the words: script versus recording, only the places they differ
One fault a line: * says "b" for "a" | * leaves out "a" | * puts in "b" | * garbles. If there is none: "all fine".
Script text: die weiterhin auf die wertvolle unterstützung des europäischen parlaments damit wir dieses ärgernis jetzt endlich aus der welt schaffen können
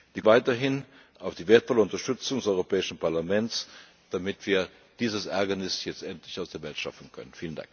all fine